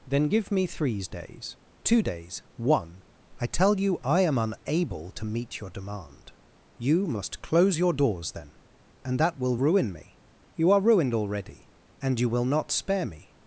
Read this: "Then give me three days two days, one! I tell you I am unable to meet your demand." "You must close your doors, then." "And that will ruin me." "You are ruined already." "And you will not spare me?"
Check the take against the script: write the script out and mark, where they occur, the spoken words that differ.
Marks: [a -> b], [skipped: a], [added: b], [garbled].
"Then give me [three -> threes] days two days, one! I tell you I am unable to meet your demand." "You must close your doors, then." "And that will ruin me." "You are ruined already." "And you will not spare me?"